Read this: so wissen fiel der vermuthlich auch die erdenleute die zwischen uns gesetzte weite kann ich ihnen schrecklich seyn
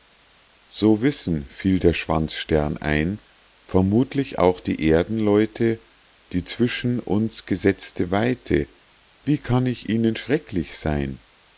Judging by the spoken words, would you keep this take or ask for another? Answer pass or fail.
fail